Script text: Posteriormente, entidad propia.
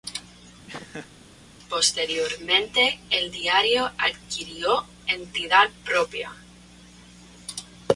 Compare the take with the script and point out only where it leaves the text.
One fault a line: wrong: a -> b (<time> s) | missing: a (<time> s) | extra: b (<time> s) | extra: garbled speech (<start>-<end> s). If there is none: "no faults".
extra: el diario adquirió (3.1 s)